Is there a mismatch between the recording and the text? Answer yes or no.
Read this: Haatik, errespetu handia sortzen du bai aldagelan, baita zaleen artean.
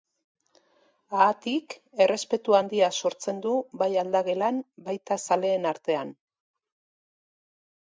no